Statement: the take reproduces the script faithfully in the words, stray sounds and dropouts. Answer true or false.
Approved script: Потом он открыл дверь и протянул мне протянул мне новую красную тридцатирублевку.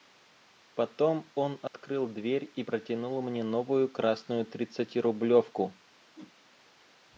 false